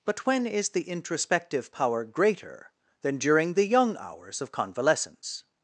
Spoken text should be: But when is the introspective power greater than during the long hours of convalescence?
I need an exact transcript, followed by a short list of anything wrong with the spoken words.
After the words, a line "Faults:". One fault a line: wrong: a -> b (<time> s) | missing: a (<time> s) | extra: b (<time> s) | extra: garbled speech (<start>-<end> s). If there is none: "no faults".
But when is the introspective power greater than during the young hours of convalescence?
Faults:
wrong: long -> young (3.7 s)